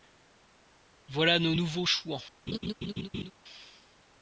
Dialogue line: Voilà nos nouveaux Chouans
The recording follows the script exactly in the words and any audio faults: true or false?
false